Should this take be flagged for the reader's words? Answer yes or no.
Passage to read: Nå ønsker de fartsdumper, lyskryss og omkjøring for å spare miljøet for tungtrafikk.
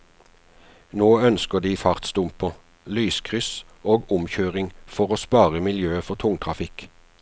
no